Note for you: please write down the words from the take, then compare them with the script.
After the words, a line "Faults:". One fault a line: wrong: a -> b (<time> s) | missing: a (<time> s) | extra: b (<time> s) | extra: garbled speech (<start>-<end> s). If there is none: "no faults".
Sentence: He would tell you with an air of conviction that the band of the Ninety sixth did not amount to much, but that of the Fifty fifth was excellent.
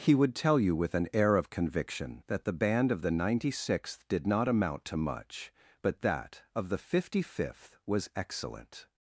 He would tell you with an air of conviction that the band of the Ninety sixth did not amount to much, but that of the Fifty fifth was excellent.
Faults:
no faults